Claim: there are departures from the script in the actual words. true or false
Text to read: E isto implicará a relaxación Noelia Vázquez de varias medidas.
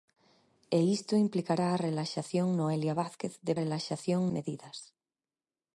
true